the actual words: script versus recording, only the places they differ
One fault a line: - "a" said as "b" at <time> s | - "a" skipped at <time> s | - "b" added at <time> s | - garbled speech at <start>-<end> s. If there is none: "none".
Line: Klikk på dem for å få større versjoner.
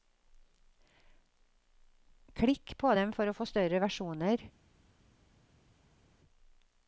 none